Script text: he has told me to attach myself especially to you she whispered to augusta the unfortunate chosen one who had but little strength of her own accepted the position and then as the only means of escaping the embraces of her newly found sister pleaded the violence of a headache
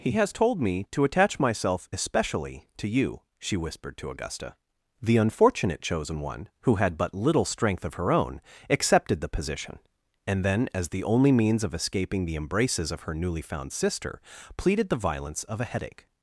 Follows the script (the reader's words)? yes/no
yes